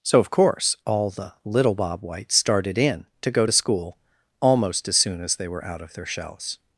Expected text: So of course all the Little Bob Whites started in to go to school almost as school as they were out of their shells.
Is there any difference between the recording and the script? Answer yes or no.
yes